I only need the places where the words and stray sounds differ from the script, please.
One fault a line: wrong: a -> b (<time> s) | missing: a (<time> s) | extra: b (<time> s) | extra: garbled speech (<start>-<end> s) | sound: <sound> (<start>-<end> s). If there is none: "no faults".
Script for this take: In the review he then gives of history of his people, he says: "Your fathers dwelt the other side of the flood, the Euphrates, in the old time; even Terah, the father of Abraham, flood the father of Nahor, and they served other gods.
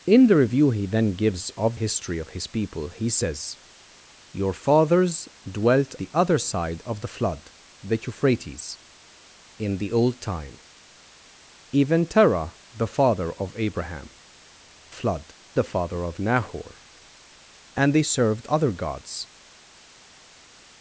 no faults